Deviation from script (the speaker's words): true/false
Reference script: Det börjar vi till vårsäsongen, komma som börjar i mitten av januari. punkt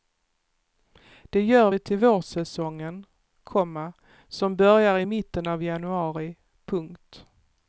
true